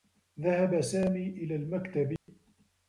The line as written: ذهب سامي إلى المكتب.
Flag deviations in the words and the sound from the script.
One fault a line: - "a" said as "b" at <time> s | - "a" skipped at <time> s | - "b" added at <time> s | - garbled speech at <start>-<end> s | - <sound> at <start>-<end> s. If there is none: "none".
- dropout at 2.2-2.3 s